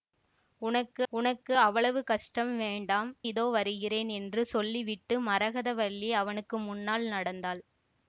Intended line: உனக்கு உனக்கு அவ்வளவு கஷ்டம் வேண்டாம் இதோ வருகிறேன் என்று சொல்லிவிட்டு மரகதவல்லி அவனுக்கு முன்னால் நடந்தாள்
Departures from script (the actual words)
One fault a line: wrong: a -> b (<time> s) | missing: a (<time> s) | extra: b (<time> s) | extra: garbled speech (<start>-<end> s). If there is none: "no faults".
no faults